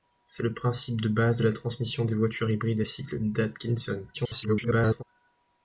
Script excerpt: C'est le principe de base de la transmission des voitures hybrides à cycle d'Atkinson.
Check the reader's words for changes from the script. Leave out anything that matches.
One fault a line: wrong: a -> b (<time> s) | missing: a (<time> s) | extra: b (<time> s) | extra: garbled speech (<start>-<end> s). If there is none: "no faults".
extra: garbled speech (4.1-5.0 s)